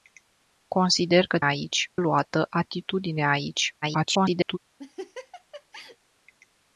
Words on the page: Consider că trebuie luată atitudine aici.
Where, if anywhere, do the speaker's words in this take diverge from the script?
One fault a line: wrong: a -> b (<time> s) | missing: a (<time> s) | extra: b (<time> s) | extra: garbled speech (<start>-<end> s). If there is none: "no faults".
wrong: trebuie -> aici (1.4 s)
extra: garbled speech (3.8-4.6 s)